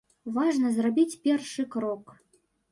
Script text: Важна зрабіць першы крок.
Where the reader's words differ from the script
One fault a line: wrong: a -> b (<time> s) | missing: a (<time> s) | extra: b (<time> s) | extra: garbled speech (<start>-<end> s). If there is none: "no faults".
no faults